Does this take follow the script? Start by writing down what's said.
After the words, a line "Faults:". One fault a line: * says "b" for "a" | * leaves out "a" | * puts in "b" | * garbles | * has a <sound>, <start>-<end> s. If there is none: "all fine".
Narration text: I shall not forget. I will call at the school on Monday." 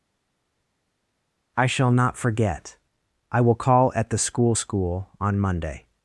I shall not forget. I will call at the school school on Monday."
Faults:
* puts in "school"